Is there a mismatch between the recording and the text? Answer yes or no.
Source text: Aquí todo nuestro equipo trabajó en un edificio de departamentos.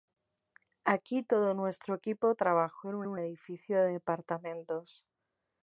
yes